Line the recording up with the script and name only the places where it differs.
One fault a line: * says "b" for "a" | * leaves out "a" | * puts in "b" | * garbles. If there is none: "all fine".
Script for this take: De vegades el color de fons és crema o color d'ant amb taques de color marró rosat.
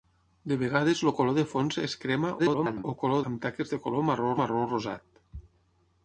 * garbles
* leaves out "d'ant"
* puts in "marró"